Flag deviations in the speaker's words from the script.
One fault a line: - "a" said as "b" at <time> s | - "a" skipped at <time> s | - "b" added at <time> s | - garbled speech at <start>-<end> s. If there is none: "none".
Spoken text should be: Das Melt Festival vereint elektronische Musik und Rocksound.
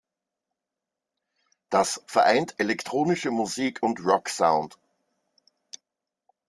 - "Melt Festival" skipped at 2.0 s